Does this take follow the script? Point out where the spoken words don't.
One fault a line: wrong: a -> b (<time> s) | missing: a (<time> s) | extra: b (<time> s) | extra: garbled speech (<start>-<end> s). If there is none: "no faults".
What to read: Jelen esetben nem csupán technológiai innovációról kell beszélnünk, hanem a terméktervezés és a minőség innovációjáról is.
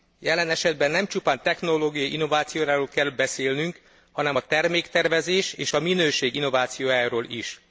no faults